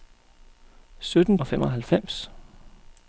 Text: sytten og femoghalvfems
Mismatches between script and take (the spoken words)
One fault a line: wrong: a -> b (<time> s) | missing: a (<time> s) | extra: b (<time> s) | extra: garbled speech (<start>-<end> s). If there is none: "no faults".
no faults